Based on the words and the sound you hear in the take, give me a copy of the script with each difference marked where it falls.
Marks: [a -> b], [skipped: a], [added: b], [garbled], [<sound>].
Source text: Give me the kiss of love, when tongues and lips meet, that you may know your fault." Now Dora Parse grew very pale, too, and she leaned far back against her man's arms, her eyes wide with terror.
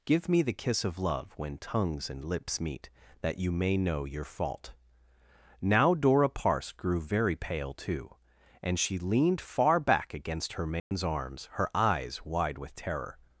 Give me the kiss of love, when tongues and lips meet, that you may know your fault." Now Dora Parse grew very pale, too, and she leaned far back against her man's [dropout] arms, her eyes wide with terror.